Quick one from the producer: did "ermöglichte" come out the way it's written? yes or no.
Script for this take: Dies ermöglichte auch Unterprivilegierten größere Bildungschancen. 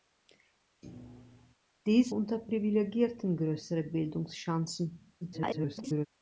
no